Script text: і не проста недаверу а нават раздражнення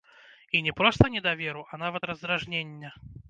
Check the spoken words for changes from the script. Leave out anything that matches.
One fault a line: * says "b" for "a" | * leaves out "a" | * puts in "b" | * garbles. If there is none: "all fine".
all fine